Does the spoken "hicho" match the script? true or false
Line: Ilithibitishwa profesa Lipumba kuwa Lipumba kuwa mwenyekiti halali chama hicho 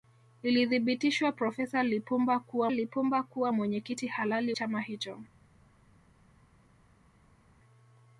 true